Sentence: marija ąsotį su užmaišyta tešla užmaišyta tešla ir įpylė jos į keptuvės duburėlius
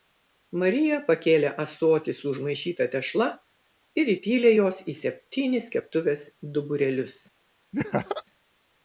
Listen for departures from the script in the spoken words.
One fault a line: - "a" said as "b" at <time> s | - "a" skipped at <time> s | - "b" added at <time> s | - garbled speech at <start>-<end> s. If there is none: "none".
- "pakėlė" added at 1.1 s
- "užmaišyta tešla" skipped at 3.3 s
- "septynis" added at 5.0 s